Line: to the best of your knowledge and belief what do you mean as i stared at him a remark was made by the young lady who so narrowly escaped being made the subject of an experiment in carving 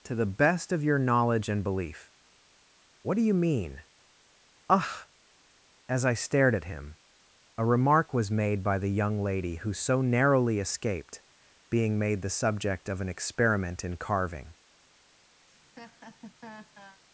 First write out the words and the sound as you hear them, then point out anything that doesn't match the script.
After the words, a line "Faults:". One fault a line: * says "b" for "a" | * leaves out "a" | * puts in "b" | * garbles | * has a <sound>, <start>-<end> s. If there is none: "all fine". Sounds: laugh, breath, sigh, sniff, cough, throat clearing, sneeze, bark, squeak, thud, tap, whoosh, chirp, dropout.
to the best of your knowledge and belief what do you mean ugh as i stared at him a remark was made by the young lady who so narrowly escaped being made the subject of an experiment in carving
Faults:
* puts in "ugh"
* has a laugh, 15.4-17.0 s